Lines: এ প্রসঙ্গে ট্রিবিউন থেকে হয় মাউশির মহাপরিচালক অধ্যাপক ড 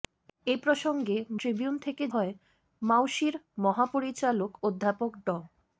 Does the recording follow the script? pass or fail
pass